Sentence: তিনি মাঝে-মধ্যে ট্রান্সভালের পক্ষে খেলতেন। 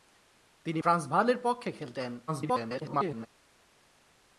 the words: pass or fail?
fail